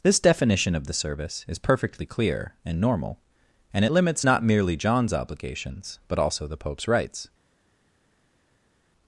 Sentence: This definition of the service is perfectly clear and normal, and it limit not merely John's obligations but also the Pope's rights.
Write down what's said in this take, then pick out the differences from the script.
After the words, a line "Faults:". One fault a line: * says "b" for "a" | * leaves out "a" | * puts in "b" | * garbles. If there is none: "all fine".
This definition of the service is perfectly clear and normal, and it limits not merely John's obligations but also the Pope's rights.
Faults:
* says "limits" for "limit"